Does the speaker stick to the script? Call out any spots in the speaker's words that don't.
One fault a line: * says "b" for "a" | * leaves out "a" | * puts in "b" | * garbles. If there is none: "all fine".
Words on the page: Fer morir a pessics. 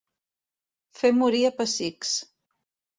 all fine